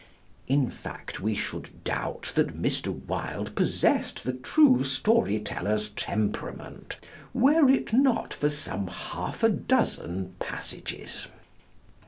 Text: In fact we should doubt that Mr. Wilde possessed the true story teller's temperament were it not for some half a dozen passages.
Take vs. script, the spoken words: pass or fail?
pass